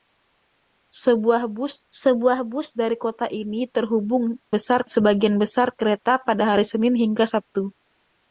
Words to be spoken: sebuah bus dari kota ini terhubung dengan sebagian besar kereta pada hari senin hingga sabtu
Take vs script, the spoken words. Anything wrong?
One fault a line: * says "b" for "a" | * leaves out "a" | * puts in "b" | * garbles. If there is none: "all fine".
* puts in "sebuah bus"
* says "besar" for "dengan"